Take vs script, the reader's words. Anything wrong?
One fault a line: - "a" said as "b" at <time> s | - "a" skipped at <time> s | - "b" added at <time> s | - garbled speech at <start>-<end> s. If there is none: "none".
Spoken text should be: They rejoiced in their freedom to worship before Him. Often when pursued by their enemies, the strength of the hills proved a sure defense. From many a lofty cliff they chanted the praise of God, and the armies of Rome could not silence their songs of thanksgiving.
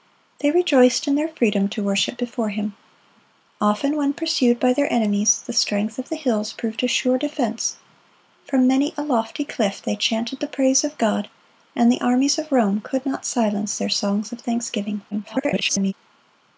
- garbled speech at 15.1-15.9 s